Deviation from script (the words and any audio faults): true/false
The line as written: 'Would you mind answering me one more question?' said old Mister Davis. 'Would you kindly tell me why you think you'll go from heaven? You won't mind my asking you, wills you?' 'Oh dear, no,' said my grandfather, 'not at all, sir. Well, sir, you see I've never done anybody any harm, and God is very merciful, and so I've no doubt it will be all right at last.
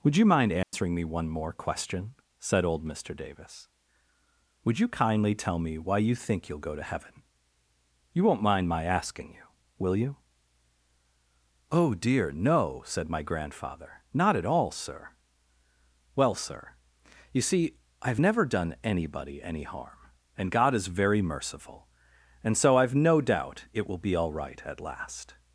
true